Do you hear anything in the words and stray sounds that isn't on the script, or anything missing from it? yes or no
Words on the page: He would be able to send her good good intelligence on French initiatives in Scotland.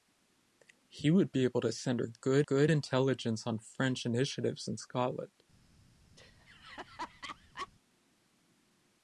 yes